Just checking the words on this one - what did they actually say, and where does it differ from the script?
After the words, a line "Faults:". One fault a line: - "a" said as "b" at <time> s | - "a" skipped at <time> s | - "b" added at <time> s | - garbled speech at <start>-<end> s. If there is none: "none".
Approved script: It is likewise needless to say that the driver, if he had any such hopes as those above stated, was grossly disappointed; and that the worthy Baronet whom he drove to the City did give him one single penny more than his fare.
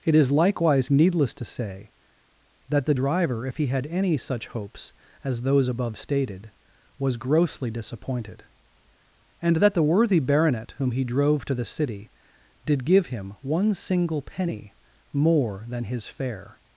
It is likewise needless to say that the driver, if he had any such hopes as those above stated, was grossly disappointed; and that the worthy Baronet whom he drove to the City did give him one single penny more than his fare.
Faults:
none